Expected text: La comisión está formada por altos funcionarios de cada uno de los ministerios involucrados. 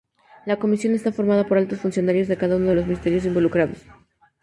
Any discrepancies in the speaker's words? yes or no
no